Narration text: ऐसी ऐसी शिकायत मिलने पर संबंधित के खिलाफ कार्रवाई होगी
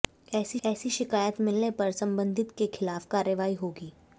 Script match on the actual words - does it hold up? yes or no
yes